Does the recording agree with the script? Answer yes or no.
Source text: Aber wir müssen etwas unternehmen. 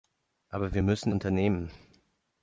no